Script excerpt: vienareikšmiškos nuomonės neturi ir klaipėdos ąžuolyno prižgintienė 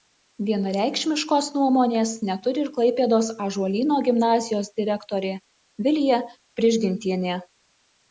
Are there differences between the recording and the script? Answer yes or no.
yes